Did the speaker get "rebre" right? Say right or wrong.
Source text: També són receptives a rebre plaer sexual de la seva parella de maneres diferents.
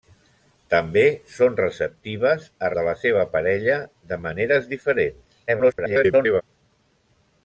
wrong